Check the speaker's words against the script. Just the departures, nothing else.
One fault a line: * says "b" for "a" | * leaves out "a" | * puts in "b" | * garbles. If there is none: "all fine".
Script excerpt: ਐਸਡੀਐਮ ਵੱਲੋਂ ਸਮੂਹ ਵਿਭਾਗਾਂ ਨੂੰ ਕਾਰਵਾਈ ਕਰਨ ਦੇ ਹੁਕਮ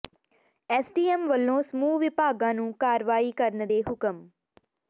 all fine